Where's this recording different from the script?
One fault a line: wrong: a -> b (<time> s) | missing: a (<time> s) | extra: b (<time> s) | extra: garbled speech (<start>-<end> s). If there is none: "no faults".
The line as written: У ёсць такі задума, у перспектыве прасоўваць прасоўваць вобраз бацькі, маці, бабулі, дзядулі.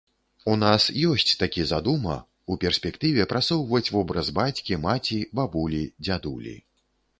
extra: нас (0.6 s)
missing: прасоўваць (3.8 s)